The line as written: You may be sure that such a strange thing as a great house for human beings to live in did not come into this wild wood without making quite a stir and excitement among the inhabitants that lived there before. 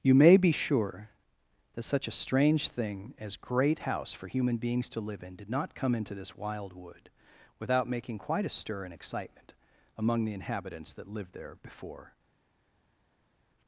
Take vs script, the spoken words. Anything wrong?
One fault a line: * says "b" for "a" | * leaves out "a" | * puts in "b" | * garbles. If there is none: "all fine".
* leaves out "a"